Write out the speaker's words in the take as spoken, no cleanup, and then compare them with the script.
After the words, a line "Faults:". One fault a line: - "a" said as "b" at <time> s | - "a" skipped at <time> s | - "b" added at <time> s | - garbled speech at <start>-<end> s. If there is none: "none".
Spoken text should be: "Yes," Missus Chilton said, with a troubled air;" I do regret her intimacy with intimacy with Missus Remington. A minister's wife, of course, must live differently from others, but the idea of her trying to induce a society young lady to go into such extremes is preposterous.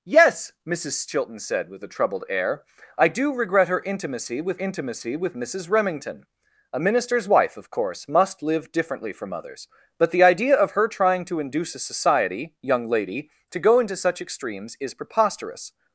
"Yes," Missus Chilton said, with a troubled air;" I do regret her intimacy with intimacy with Missus Remington. A minister's wife, of course, must live differently from others, but the idea of her trying to induce a society young lady to go into such extremes is preposterous.
Faults:
none